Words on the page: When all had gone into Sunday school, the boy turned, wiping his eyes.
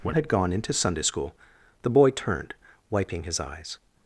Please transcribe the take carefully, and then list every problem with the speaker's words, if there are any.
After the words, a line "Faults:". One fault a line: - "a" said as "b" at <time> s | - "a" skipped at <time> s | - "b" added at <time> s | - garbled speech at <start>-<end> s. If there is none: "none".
When had gone into Sunday school, the boy turned, wiping his eyes.
Faults:
- "all" skipped at 0.1 s